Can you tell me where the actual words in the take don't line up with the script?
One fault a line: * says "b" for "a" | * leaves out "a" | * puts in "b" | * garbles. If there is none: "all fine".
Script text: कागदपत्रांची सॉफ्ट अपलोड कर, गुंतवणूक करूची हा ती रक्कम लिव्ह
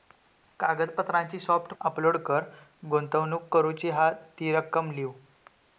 all fine